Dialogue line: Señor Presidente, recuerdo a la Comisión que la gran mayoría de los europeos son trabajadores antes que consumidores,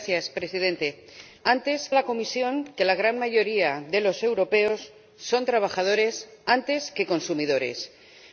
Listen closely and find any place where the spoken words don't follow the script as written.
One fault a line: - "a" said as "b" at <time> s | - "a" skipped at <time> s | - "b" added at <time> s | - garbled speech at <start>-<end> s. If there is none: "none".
- "recuerdo" said as "antes" at 1.4 s